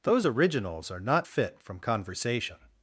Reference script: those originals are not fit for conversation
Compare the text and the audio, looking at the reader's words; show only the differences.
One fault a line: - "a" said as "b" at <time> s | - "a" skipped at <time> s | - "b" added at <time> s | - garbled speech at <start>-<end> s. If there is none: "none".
- "for" said as "from" at 1.6 s